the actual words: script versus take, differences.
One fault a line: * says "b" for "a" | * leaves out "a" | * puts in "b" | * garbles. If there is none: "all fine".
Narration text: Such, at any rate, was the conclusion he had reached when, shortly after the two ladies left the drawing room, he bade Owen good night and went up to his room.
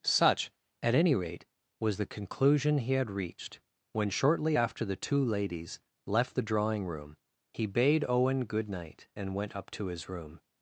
all fine